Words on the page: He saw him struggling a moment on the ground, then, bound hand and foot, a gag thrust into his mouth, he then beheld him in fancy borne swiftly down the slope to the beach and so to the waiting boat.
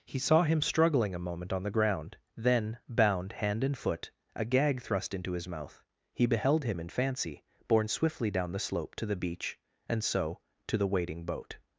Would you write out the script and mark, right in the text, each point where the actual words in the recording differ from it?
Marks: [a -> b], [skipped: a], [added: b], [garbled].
He saw him struggling a moment on the ground, then, bound hand and foot, a gag thrust into his mouth, he [skipped: then] beheld him in fancy borne swiftly down the slope to the beach and so to the waiting boat.